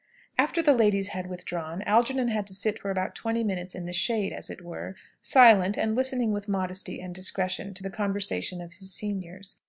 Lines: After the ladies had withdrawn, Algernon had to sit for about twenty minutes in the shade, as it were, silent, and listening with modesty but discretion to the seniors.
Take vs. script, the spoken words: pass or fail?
fail